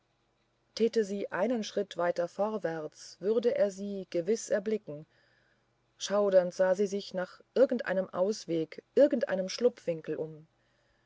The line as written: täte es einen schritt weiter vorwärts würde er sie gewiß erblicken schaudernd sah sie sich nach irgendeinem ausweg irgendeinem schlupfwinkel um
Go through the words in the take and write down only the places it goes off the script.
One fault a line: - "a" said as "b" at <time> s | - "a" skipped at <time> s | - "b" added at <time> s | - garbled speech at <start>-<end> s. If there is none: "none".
- "es" said as "sie" at 1.1 s